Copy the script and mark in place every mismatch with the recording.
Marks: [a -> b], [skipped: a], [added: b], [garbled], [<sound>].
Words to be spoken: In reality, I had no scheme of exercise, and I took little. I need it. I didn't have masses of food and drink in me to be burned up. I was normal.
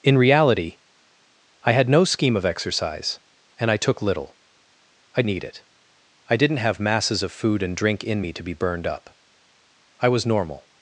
In reality, I had no scheme of exercise, and I took little. I need it. I didn't have masses of food and drink in me to be burned up. I was normal.